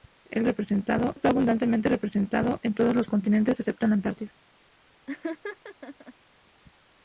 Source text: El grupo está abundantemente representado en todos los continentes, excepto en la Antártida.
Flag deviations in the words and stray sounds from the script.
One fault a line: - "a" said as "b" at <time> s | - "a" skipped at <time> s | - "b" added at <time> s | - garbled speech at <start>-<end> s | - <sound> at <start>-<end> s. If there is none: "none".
- "grupo" said as "representado" at 0.4 s
- laugh at 5.1-6.1 s